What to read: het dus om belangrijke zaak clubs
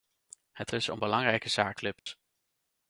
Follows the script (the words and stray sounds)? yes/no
no